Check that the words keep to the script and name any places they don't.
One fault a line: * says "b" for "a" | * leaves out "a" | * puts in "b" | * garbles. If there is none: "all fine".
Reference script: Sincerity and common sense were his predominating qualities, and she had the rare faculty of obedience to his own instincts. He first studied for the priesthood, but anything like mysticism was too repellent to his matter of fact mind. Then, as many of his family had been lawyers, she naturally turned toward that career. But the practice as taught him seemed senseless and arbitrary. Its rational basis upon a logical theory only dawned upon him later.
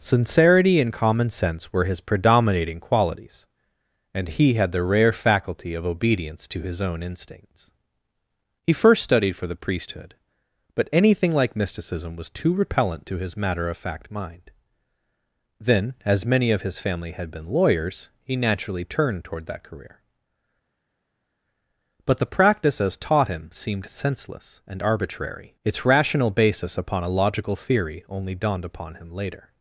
* says "he" for "she"
* says "he" for "she"